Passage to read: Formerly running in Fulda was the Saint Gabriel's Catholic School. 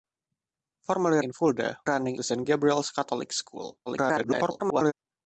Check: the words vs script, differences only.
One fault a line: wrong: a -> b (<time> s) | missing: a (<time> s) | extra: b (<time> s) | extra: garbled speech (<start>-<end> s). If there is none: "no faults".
missing: running (1.2 s)
wrong: was -> running (1.8 s)
extra: garbled speech (3.9-4.9 s)